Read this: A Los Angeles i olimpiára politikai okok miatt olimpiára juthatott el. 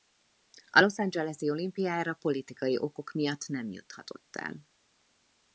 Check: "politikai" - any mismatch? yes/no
no